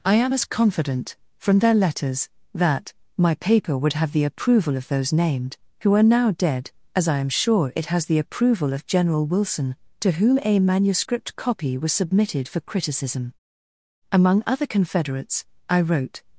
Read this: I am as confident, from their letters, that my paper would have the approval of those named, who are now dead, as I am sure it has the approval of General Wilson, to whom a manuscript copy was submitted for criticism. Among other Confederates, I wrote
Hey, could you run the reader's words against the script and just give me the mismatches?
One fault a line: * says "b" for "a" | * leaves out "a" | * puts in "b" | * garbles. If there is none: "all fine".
all fine